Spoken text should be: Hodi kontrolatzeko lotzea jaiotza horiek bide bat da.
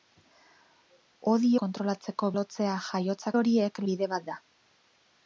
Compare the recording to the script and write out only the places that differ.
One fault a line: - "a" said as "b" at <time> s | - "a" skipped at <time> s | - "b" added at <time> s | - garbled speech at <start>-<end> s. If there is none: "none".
none